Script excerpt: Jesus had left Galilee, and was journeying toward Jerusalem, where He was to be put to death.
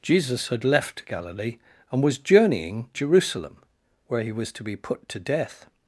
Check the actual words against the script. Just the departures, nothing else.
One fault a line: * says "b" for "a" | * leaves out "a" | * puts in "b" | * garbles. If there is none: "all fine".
* leaves out "toward"